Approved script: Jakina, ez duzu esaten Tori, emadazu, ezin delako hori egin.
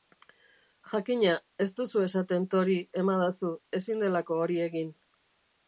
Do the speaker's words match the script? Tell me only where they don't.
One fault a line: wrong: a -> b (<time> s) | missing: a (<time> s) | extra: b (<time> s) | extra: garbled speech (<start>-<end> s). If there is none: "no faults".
no faults